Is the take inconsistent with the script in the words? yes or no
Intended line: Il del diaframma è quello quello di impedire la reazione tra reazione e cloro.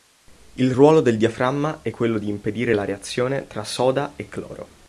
yes